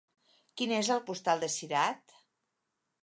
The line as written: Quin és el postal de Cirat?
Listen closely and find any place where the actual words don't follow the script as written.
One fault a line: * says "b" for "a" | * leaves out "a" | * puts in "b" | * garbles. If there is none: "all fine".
all fine